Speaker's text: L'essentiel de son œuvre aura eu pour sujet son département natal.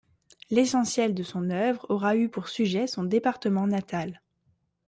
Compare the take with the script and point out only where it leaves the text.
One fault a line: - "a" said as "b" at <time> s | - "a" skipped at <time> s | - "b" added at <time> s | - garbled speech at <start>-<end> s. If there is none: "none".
none